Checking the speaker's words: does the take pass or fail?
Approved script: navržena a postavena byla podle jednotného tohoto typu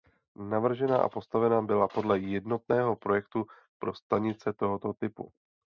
fail